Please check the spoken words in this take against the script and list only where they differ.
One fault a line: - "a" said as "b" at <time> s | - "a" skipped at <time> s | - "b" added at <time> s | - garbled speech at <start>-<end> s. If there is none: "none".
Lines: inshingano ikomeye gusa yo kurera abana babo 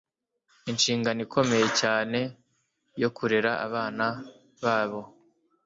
- "gusa" said as "cyane" at 1.8 s